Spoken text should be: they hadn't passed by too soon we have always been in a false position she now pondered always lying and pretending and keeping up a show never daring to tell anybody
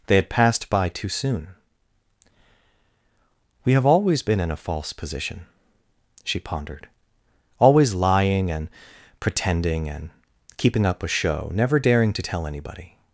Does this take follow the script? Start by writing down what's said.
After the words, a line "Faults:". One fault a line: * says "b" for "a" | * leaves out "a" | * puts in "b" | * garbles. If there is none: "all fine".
they had passed by too soon we have always been in a false position she pondered always lying and pretending and keeping up a show never daring to tell anybody
Faults:
* says "had" for "hadn't"
* leaves out "now"